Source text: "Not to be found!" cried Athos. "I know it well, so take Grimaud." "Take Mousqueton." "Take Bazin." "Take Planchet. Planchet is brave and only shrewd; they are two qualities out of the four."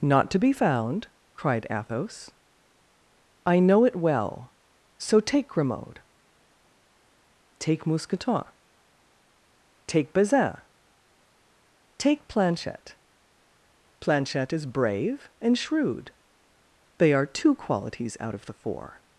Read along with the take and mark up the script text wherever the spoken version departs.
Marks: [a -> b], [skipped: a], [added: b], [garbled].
"Not to be found!" cried Athos. "I know it well, so take Grimaud." "Take Mousqueton." "Take Bazin." "Take Planchet. Planchet is brave and [skipped: only] shrewd; they are two qualities out of the four."